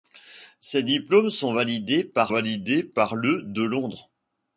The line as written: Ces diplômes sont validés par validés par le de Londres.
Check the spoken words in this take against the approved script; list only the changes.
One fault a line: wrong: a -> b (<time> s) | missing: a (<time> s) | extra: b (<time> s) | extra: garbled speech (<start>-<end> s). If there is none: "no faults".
no faults